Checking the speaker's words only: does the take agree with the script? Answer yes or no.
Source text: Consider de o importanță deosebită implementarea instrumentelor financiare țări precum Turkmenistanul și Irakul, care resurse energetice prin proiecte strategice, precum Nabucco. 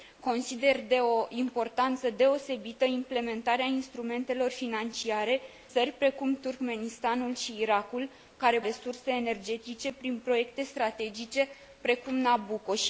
yes